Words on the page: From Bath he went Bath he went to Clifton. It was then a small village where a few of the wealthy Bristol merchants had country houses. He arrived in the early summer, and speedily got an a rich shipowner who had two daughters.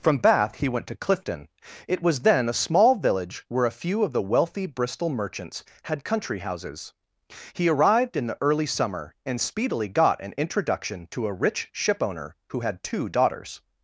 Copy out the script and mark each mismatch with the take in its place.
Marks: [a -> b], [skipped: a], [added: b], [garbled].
From Bath he went [skipped: Bath he went] to Clifton. It was then a small village where a few of the wealthy Bristol merchants had country houses. He arrived in the early summer, and speedily got an [added: introduction to] a rich shipowner who had two daughters.